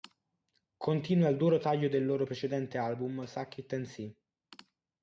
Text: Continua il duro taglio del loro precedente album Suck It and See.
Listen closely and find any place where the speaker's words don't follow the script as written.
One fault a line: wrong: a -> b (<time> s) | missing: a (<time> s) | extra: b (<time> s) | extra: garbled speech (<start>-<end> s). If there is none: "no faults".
no faults